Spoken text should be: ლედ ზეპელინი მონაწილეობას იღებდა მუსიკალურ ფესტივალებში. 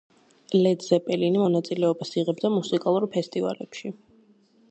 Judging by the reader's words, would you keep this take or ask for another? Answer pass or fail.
pass